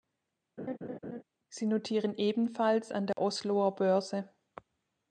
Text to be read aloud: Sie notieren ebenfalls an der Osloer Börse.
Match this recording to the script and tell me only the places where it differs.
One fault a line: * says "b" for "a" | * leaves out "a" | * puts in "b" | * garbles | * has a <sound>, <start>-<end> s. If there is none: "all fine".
* has a laugh, 0.6-1.2 s
* has a dropout, 3.1-3.2 s